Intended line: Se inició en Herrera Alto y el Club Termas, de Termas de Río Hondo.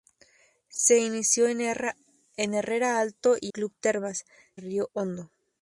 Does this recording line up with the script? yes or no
no